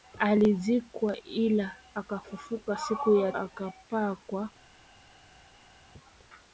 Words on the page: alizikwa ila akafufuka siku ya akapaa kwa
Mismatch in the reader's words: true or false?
false